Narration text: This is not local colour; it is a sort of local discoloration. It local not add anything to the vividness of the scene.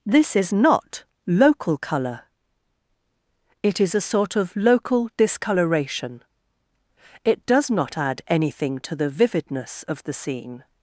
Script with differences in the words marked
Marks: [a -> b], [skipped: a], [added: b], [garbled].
This is not local colour; it is a sort of local discoloration. It [local -> does] not add anything to the vividness of the scene.